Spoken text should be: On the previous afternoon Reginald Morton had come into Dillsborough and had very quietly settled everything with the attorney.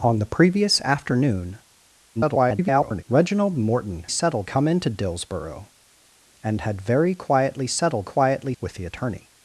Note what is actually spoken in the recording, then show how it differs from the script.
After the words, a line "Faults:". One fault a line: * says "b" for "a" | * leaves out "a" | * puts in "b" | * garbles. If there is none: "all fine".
On the previous afternoon [garbled] Reginald Morton settled come into Dillsborough and had very quietly settled quietly with the attorney.
Faults:
* garbles
* says "settled" for "had"
* says "quietly" for "everything"